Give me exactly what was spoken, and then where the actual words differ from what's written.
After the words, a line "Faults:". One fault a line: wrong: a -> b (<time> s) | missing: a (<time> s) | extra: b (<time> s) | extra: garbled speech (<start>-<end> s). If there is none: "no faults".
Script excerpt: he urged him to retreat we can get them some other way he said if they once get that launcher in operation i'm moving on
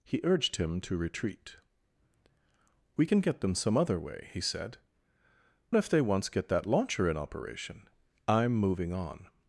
he urged him to retreat we can get them some other way he said if they once get that launcher in operation i'm moving on
Faults:
no faults